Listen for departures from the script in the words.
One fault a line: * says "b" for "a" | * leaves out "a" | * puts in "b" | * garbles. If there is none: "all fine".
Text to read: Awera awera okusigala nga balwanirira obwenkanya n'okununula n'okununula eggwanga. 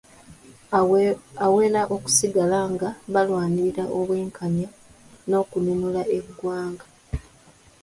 * leaves out "awera"
* leaves out "n'okununula"